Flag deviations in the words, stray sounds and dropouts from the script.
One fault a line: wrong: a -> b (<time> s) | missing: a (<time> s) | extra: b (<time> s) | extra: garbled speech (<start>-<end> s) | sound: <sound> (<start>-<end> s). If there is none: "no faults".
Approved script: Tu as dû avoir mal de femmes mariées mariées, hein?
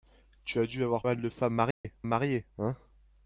sound: dropout (1.7-1.8 s)